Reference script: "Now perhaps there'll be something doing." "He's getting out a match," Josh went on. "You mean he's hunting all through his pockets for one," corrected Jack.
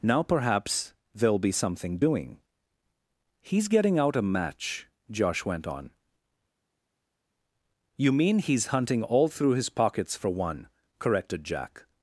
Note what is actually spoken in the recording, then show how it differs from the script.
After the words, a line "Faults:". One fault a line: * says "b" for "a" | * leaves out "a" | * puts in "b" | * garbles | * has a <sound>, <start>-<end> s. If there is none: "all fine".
"Now perhaps there'll be something doing." "He's getting out a match," Josh went on. "You mean he's hunting all through his pockets for one," corrected Jack.
Faults:
all fine